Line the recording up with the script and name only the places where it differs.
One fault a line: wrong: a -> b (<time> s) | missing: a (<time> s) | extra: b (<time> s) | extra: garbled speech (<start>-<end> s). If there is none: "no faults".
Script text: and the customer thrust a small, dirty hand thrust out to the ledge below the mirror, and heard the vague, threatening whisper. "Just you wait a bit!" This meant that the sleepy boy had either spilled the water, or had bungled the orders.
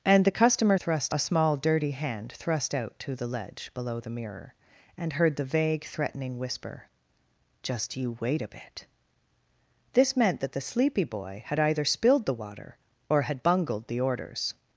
no faults